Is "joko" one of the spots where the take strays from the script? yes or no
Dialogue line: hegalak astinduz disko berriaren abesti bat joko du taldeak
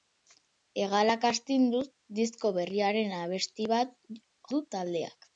yes